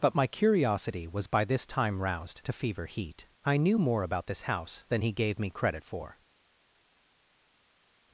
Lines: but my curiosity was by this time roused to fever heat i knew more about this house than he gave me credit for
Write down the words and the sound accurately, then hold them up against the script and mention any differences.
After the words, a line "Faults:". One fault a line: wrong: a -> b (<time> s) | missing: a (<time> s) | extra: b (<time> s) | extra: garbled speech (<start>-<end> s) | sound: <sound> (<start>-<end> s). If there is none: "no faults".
but my curiosity was by this time roused to fever heat i knew more about this house than he gave me credit for
Faults:
no faults